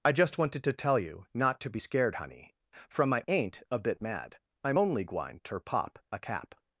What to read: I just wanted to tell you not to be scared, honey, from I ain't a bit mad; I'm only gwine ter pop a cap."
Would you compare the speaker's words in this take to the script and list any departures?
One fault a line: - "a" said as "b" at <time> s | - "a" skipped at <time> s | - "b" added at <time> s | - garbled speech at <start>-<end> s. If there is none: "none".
none